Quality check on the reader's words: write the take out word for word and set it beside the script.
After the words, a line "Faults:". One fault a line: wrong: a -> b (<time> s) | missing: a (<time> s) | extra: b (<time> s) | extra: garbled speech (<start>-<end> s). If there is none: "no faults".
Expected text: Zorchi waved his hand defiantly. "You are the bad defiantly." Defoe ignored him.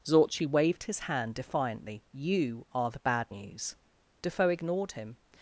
Zorchi waved his hand defiantly. "You are the bad news." Defoe ignored him.
Faults:
wrong: defiantly -> news (3.3 s)